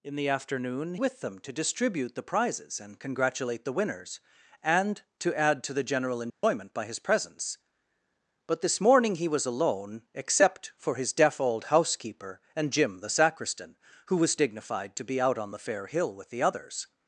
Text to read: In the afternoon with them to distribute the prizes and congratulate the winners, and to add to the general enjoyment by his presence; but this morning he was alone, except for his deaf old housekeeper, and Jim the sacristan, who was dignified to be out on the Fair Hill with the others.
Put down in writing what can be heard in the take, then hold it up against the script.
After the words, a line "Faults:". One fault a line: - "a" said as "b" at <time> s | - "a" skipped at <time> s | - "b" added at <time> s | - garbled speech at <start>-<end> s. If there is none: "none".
In the afternoon with them to distribute the prizes and congratulate the winners, and to add to the general enjoyment by his presence; but this morning he was alone, except for his deaf old housekeeper, and Jim the sacristan, who was dignified to be out on the Fair Hill with the others.
Faults:
none